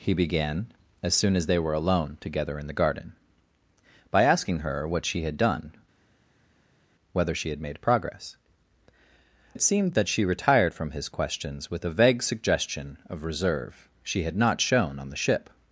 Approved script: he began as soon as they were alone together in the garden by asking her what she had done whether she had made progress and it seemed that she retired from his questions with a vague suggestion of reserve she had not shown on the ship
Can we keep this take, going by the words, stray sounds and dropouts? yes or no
no